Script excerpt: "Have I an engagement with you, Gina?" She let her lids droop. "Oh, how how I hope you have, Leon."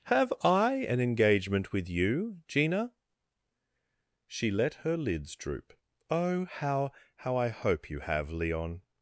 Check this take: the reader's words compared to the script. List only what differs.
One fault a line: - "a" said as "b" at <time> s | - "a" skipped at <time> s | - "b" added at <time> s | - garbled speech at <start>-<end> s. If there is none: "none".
none